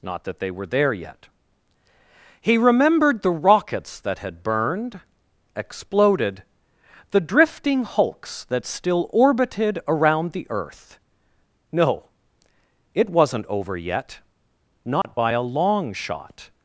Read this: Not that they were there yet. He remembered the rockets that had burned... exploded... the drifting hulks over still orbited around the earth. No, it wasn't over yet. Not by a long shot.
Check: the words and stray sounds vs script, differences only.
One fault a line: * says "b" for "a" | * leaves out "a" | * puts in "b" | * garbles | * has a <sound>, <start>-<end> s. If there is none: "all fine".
* says "that" for "over"
* has a dropout, 15.0-15.0 s